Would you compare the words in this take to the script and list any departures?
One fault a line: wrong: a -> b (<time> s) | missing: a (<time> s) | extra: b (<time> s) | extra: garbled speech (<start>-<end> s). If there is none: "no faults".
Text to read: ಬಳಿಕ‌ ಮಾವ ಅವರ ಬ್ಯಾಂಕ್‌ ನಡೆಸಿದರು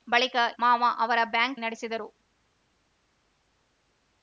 no faults